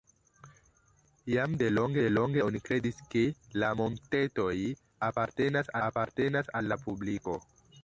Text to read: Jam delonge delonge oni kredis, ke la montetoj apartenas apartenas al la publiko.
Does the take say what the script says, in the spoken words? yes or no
yes